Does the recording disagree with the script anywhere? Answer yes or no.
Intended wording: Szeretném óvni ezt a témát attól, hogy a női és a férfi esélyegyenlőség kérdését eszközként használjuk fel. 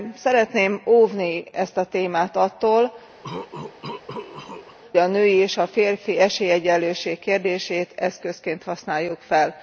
yes